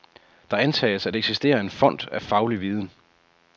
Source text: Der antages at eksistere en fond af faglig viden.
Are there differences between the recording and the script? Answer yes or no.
no